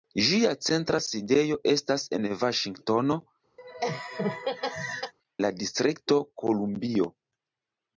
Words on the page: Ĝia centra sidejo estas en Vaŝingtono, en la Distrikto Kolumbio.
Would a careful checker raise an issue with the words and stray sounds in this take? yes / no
yes